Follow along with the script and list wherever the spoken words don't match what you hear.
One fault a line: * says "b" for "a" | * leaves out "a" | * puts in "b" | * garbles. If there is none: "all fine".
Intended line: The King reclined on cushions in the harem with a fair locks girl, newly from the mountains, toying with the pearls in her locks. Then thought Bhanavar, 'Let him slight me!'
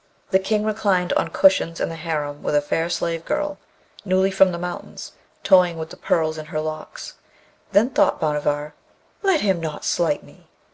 * says "slave" for "locks"
* puts in "not"